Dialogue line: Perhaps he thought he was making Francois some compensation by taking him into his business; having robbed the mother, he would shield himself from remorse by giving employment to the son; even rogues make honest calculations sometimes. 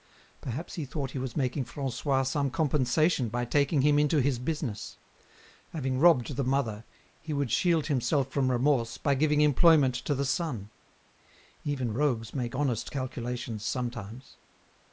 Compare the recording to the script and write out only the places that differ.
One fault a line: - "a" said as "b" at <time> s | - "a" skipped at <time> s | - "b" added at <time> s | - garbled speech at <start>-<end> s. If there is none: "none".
none